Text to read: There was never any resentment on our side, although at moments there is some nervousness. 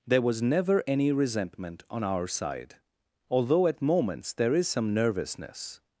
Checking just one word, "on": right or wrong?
right